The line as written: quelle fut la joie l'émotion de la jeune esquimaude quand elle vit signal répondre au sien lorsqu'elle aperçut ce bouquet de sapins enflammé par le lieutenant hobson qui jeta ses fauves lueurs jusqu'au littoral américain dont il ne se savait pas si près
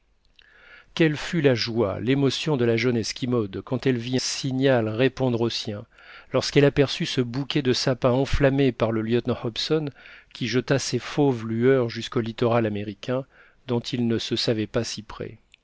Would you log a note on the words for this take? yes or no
no